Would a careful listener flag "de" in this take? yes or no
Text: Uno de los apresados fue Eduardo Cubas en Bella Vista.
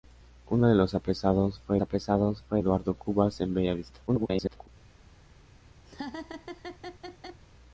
no